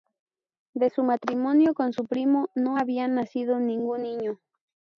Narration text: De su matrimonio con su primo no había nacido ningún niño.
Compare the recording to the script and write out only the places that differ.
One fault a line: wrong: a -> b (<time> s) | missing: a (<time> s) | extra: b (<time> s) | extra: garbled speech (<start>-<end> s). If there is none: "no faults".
no faults